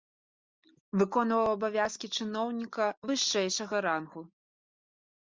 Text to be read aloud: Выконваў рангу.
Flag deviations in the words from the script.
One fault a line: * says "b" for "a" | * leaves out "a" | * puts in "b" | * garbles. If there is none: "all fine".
* puts in "абавязкі чыноўніка вышэйшага"